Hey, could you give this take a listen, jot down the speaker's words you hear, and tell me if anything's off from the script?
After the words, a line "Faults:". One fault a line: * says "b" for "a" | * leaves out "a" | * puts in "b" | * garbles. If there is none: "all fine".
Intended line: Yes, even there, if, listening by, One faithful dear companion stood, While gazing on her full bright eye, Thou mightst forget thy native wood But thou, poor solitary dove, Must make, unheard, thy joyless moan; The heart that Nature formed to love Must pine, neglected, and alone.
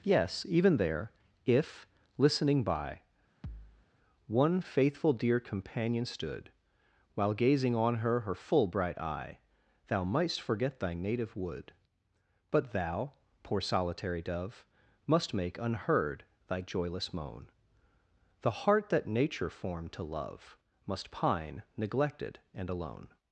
Yes, even there, if, listening by, One faithful dear companion stood, While gazing on her her full bright eye, Thou mightst forget thy native wood But thou, poor solitary dove, Must make, unheard, thy joyless moan; The heart that Nature formed to love Must pine, neglected, and alone.
Faults:
* puts in "her"